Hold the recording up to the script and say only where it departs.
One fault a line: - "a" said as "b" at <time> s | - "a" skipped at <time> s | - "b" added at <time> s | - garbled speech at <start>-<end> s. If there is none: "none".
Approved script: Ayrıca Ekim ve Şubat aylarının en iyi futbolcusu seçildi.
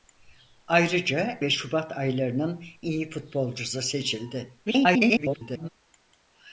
- "Ekim" skipped at 1.4 s
- "en" skipped at 2.6 s
- garbled speech at 4.7-5.7 s